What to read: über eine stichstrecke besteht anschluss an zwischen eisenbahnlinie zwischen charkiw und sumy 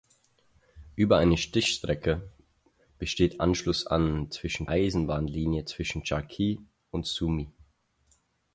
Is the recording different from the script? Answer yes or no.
no